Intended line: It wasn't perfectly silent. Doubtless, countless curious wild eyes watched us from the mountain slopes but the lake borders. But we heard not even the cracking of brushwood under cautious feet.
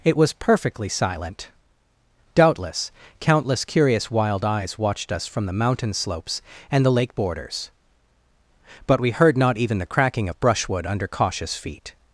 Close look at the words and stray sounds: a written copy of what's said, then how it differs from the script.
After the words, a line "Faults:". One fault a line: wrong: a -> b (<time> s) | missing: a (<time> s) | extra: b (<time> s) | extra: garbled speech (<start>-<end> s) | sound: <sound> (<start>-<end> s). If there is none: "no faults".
It was perfectly silent. Doubtless, countless curious wild eyes watched us from the mountain slopes and the lake borders. But we heard not even the cracking of brushwood under cautious feet.
Faults:
wrong: wasn't -> was (0.2 s)
wrong: but -> and (6.7 s)